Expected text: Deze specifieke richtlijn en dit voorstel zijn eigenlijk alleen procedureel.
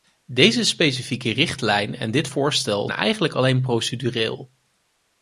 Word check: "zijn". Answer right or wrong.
wrong